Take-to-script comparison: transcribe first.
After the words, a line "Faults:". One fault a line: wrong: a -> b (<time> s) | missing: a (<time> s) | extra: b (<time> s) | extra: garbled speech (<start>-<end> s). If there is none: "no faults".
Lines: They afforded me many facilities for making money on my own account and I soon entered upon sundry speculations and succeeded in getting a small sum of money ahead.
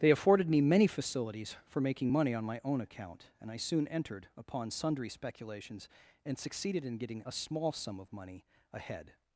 They afforded me many facilities for making money on my own account and I soon entered upon sundry speculations and succeeded in getting a small sum of money ahead.
Faults:
no faults